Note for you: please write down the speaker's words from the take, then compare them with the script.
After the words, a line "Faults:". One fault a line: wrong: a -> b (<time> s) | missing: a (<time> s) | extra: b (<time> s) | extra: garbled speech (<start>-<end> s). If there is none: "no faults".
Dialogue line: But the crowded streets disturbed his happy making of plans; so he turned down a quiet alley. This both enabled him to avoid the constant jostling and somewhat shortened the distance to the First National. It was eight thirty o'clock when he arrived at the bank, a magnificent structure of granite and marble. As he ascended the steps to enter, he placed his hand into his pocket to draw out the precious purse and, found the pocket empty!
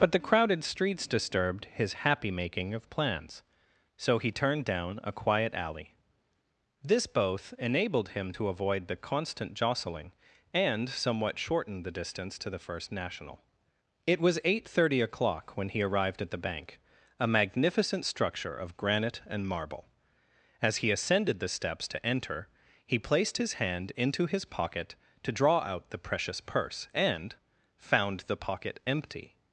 But the crowded streets disturbed his happy making of plans; so he turned down a quiet alley. This both enabled him to avoid the constant jostling and somewhat shortened the distance to the First National. It was eight thirty o'clock when he arrived at the bank, a magnificent structure of granite and marble. As he ascended the steps to enter, he placed his hand into his pocket to draw out the precious purse and, found the pocket empty!
Faults:
no faults